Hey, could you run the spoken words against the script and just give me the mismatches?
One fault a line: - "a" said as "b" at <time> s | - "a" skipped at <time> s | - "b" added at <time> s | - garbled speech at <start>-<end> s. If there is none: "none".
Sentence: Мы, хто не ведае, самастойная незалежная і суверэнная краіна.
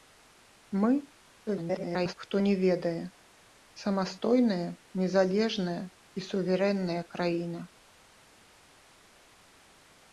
- garbled speech at 1.5-2.1 s